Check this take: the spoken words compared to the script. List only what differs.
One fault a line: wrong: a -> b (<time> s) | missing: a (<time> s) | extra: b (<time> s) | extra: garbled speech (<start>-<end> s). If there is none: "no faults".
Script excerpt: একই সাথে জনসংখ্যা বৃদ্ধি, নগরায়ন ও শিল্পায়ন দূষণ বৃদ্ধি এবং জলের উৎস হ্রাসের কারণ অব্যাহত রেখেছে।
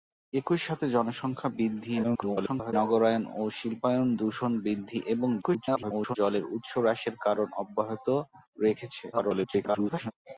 extra: garbled speech (2.0-2.7 s)
extra: garbled speech (5.4-6.2 s)
extra: garbled speech (9.1-10.1 s)